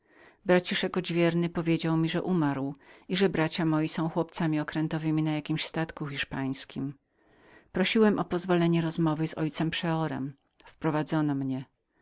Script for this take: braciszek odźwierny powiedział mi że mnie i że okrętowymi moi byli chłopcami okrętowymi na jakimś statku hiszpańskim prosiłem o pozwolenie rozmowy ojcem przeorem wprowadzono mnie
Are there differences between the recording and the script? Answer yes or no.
yes